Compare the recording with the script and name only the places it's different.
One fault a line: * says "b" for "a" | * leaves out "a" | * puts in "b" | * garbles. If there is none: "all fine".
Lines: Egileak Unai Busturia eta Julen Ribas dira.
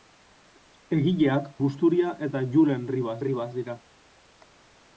* leaves out "Unai"
* puts in "Ribas"